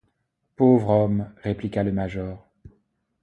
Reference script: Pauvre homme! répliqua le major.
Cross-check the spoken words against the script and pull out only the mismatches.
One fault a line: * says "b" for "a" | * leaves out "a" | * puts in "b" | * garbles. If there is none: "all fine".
all fine